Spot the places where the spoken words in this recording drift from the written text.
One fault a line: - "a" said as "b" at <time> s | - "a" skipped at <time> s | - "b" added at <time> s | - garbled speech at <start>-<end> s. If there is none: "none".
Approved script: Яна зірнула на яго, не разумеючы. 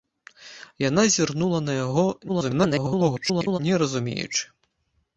- garbled speech at 2.3-3.6 s